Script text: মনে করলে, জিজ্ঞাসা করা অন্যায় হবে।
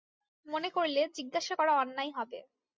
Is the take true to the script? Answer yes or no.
yes